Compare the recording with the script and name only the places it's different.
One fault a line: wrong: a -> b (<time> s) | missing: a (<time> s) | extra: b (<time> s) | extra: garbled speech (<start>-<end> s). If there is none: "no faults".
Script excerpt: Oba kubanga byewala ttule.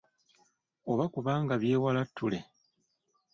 no faults